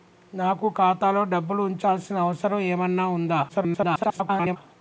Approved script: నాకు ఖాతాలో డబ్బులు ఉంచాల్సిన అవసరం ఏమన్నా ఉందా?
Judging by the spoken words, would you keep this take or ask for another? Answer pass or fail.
fail